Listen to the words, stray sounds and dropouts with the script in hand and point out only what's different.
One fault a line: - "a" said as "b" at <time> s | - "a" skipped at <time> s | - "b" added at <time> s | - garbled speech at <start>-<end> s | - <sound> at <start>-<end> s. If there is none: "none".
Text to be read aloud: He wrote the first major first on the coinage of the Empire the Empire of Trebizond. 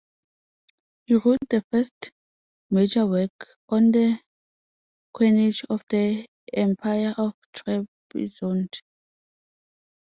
- "first" said as "work" at 3.0 s
- "the Empire" skipped at 7.1 s